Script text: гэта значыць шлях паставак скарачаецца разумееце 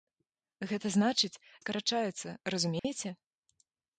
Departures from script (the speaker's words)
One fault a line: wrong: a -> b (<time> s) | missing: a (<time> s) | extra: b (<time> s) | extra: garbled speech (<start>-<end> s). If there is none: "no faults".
missing: шлях паставак (1.4 s)